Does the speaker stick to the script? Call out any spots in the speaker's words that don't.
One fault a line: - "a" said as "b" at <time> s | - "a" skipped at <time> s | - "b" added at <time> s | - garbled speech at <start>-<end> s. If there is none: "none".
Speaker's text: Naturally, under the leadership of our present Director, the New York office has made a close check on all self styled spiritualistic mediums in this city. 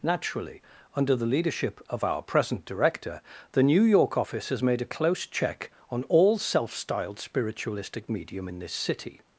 - "mediums" said as "medium" at 8.1 s